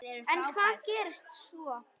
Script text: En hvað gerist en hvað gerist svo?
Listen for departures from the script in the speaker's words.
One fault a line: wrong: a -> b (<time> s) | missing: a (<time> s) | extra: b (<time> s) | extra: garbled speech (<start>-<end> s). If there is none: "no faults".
missing: en hvað gerist (1.3 s)